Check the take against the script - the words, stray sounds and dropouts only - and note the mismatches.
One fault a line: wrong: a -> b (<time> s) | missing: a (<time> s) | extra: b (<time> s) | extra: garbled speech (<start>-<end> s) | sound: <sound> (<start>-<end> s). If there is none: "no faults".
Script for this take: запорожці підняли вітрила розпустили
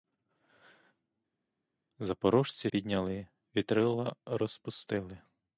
no faults